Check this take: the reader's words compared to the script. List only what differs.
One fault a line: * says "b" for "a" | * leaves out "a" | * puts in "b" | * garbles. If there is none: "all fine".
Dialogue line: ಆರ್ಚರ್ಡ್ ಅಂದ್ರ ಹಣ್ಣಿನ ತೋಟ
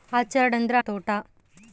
* leaves out "ಹಣ್ಣಿನ"